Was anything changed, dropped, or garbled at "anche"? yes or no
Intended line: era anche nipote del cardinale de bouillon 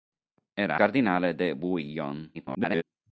yes